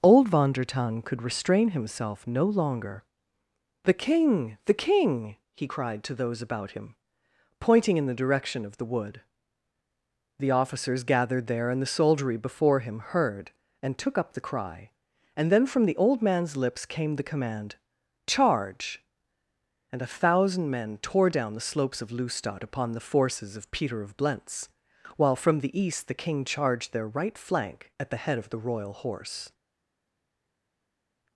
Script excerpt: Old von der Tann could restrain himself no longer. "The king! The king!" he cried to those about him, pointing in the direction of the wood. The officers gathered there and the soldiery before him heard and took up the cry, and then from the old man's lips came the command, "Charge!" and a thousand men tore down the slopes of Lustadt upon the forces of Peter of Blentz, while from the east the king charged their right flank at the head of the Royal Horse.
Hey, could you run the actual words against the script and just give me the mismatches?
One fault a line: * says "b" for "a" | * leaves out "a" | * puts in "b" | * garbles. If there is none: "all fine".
all fine